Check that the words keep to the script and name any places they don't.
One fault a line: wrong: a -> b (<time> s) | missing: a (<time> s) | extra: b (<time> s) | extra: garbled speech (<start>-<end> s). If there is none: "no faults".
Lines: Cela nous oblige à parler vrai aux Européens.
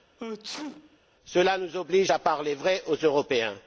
no faults